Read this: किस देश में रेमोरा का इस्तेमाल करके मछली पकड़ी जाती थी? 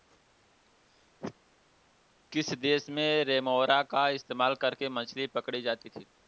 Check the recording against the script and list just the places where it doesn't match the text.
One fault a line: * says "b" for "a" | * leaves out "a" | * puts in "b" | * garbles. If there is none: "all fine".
all fine